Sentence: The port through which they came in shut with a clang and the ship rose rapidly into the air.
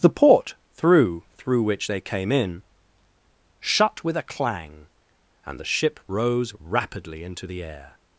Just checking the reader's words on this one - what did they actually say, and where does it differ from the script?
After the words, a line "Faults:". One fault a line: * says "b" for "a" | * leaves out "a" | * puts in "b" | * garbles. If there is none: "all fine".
The port through through which they came in shut with a clang and the ship rose rapidly into the air.
Faults:
* puts in "through"